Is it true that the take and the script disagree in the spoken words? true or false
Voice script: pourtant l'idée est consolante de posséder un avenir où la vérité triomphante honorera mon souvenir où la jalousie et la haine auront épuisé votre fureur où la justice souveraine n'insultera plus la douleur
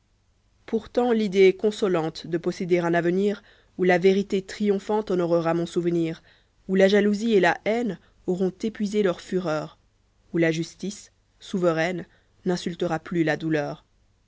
true